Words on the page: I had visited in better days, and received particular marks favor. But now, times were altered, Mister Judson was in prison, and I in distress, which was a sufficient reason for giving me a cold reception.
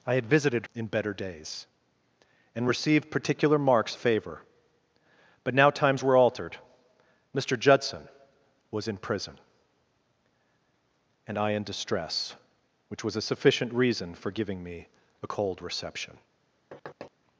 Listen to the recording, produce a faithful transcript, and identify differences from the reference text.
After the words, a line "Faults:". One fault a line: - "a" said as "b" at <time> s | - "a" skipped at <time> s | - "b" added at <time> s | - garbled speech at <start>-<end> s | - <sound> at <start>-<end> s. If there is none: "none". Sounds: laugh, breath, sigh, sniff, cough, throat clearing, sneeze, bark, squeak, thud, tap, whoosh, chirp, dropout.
I had visited in better days, and received particular marks favor. But now, times were altered, Mister Judson was in prison, and I in distress, which was a sufficient reason for giving me a cold reception.
Faults:
- thud at 16.7-17.1 s